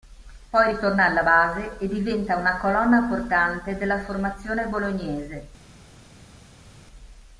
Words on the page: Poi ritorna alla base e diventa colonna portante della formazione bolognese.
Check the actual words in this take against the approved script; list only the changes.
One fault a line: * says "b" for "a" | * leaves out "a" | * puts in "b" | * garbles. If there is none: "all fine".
* puts in "una"